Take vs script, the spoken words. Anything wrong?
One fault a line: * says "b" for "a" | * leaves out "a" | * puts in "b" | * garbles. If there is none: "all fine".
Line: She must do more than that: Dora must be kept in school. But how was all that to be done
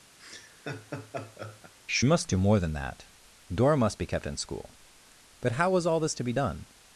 * says "this" for "that"